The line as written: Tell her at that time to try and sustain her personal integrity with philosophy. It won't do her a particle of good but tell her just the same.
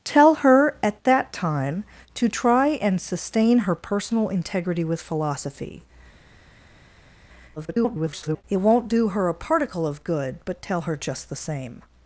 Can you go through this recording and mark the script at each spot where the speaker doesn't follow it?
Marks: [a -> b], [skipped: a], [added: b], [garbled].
Tell her at that time to try and sustain her personal integrity with philosophy. [garbled] It won't do her a particle of good but tell her just the same.